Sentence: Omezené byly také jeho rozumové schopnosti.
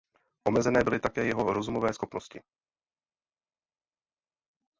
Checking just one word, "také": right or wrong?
right